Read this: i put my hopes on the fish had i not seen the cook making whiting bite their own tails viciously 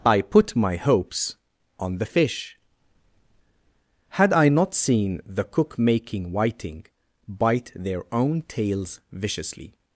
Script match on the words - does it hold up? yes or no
yes